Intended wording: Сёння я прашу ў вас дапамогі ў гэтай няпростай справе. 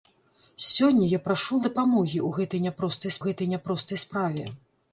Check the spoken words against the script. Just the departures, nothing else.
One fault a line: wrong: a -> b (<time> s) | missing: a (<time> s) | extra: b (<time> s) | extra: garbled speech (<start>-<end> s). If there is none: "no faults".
missing: вас (1.6 s)
extra: гэтай няпростай (3.3 s)